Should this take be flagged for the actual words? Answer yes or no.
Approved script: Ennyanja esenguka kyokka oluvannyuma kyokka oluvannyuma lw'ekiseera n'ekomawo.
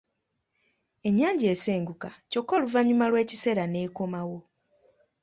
yes